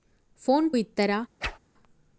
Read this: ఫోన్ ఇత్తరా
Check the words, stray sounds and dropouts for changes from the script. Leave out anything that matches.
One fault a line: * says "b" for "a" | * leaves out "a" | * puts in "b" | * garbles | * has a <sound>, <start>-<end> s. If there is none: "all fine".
* has a whoosh, 1.4-1.6 s